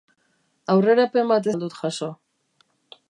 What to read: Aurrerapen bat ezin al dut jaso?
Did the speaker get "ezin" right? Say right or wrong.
wrong